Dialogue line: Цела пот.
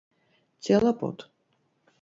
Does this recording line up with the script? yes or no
yes